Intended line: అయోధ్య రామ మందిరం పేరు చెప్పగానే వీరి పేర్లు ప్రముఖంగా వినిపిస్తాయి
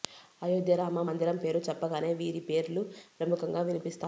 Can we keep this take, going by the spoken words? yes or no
yes